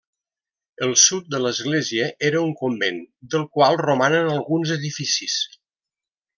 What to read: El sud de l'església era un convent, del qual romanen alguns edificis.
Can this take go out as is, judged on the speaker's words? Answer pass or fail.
pass